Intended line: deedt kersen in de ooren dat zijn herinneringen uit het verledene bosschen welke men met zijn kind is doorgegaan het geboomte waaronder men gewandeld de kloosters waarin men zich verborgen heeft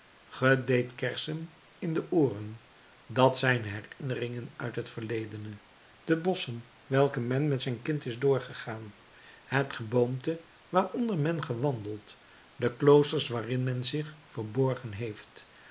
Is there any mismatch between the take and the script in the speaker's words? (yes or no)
yes